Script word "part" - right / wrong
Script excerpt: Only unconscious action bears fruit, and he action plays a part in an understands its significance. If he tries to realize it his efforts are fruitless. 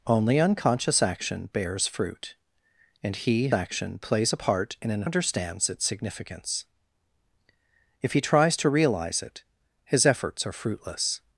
right